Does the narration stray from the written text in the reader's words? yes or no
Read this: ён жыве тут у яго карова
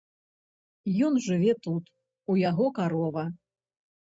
no